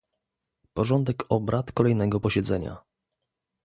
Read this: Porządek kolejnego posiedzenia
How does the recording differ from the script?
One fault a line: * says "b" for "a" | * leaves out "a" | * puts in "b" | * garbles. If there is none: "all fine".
* puts in "obrad"